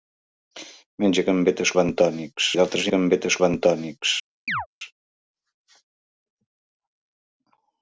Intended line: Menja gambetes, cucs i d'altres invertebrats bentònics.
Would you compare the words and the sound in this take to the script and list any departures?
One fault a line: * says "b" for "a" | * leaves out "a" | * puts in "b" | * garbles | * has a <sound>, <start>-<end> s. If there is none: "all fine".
* says "bentònics" for "cucs"
* says "gambetes" for "invertebrats"
* has a chirp, 4.5-4.7 s